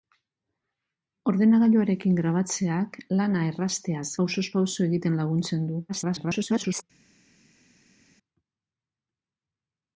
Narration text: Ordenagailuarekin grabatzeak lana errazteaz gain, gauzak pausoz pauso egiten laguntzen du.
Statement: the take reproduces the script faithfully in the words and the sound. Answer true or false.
false